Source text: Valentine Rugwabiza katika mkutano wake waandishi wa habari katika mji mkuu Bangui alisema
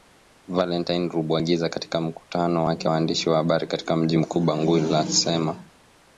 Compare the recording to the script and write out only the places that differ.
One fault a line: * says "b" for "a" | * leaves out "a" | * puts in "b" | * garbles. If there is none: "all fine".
all fine